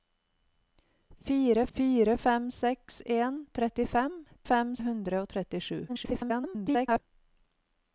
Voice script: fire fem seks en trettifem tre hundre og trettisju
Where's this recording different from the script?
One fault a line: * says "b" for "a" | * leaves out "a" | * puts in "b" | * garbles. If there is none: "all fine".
* puts in "fire"
* says "fem" for "tre"
* garbles